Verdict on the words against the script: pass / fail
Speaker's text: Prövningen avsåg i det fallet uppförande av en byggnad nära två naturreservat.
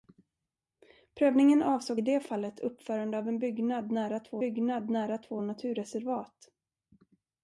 fail